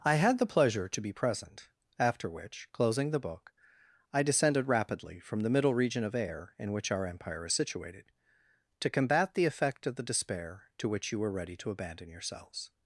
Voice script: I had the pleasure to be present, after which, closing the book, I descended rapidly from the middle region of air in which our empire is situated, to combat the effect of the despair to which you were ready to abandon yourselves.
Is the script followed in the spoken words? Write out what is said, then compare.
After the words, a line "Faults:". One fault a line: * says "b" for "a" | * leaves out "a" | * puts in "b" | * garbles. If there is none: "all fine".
I had the pleasure to be present, after which, closing the book, I descended rapidly from the middle region of air in which our empire is situated, to combat the effect of the despair to which you were ready to abandon yourselves.
Faults:
all fine